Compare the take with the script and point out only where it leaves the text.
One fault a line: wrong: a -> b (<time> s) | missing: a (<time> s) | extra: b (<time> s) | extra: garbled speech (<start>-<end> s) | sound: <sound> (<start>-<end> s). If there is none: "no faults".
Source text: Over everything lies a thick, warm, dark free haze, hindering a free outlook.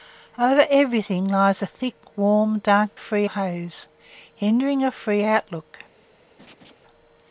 sound: laugh (6.4-6.7 s)